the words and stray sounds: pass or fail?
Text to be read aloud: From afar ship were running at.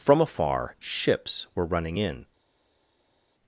fail